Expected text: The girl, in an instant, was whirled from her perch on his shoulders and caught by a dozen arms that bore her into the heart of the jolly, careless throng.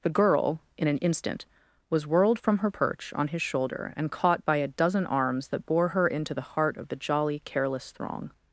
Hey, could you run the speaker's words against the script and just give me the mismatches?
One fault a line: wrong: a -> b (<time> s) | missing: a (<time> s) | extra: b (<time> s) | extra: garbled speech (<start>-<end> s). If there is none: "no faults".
wrong: shoulders -> shoulder (3.4 s)